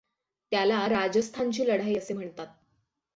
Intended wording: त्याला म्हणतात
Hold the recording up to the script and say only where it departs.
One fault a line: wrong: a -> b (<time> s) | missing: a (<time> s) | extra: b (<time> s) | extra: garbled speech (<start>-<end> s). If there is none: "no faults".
extra: राजस्थानची लढाई असे (0.9 s)